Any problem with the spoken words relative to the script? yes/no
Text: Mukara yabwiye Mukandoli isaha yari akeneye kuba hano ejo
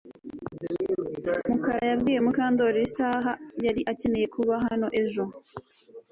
no